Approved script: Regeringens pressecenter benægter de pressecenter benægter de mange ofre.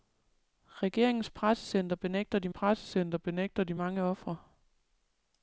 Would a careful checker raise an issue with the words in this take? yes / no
no